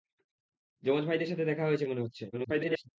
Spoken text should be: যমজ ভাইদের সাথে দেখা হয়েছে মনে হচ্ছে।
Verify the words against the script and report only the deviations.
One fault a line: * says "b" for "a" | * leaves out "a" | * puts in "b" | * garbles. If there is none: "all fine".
* garbles